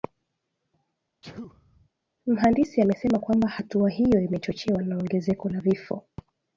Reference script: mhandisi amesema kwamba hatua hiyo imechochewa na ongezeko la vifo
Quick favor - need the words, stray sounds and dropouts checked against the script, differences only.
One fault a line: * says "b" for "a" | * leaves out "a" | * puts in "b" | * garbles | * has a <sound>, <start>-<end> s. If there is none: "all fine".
* has a sneeze, 1.2-1.9 s